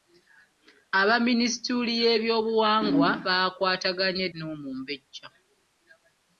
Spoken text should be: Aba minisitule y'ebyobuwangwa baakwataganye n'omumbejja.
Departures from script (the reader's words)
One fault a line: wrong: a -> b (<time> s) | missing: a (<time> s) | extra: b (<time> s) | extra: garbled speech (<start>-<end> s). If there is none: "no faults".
no faults